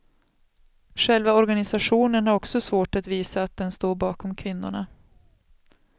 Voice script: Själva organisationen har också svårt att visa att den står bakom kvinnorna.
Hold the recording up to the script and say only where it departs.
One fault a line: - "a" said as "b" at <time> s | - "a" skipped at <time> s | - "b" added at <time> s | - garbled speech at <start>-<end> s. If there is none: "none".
none